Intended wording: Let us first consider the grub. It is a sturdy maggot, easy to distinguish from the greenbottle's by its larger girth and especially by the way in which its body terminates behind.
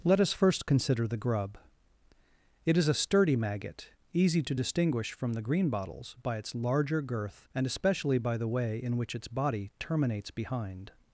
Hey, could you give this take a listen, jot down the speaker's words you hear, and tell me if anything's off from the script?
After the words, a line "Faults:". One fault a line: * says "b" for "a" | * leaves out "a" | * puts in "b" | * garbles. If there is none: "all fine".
Let us first consider the grub. It is a sturdy maggot, easy to distinguish from the greenbottle's by its larger girth and especially by the way in which its body terminates behind.
Faults:
all fine